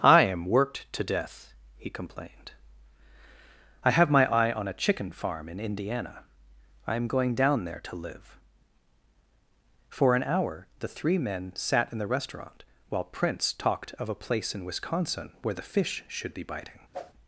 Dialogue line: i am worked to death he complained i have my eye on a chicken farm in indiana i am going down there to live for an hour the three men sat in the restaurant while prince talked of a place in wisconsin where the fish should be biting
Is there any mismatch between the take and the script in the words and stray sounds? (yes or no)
yes